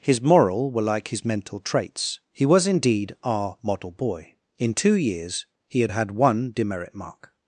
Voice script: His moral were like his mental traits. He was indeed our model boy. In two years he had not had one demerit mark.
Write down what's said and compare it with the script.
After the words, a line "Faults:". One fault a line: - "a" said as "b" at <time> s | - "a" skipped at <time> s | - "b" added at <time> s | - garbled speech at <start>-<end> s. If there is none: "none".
His moral were like his mental traits. He was indeed our model boy. In two years he had had one demerit mark.
Faults:
- "not" skipped at 5.9 s